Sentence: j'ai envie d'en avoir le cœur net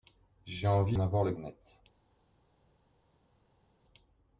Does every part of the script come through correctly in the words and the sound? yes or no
no